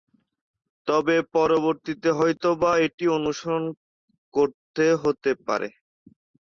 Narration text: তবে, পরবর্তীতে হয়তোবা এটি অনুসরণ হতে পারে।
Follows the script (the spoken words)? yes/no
no